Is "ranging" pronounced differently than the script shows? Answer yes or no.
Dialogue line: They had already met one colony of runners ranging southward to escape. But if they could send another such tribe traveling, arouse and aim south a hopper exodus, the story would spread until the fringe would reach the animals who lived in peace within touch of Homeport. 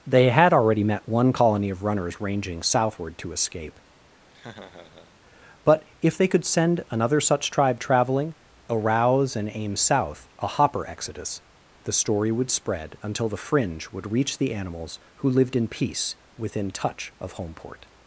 no